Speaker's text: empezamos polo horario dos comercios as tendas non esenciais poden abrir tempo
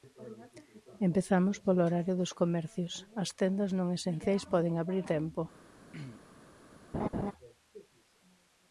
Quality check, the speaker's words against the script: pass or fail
pass